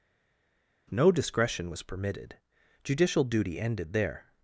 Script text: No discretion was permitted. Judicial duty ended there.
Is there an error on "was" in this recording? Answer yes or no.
no